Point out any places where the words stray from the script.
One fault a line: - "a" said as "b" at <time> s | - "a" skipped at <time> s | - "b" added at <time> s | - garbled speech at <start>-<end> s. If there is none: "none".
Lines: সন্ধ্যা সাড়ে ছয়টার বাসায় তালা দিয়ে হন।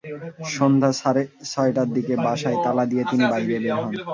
- "দিকে" added at 2.0 s
- "তিনি বাইরে বের" added at 3.1 s